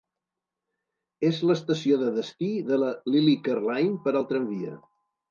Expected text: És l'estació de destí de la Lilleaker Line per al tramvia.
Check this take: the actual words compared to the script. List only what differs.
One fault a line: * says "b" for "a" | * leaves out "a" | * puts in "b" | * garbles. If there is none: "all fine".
all fine